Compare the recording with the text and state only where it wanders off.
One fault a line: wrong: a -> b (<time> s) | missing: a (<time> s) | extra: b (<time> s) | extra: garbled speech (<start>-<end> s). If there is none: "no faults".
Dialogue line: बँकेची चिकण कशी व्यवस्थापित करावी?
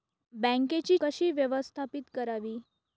missing: चिकण (1.0 s)